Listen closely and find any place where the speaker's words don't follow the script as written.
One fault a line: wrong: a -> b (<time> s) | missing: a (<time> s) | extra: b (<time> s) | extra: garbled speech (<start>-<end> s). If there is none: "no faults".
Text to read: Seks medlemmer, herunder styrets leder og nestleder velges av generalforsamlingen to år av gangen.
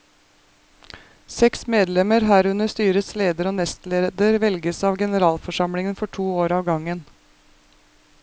extra: for (6.0 s)